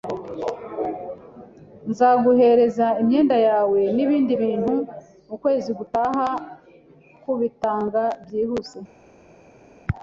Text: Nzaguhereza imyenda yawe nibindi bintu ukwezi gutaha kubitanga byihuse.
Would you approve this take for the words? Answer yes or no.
yes